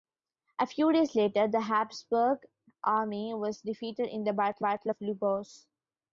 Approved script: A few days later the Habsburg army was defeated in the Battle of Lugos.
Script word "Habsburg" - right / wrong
right